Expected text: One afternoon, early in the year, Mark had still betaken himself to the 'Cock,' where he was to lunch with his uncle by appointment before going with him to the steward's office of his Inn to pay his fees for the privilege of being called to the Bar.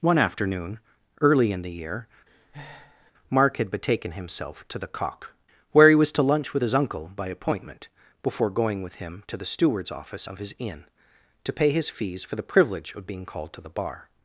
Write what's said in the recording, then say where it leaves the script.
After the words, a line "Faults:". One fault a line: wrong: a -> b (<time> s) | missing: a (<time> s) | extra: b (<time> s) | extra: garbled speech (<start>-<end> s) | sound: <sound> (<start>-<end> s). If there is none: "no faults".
One afternoon, early in the year, Mark had betaken himself to the 'Cock,' where he was to lunch with his uncle by appointment before going with him to the steward's office of his Inn to pay his fees for the privilege of being called to the Bar.
Faults:
sound: breath (2.3-3.1 s)
missing: still (3.7 s)